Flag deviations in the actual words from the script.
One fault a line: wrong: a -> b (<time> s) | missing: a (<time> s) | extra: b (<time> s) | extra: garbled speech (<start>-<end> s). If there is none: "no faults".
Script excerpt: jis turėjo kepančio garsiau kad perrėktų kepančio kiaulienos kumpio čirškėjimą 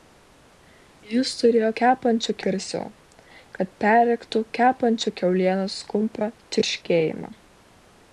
no faults